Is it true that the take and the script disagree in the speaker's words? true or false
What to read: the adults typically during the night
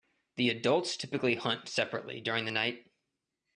true